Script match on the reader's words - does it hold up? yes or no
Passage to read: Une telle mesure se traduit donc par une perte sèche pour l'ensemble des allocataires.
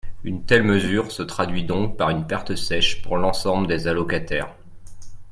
yes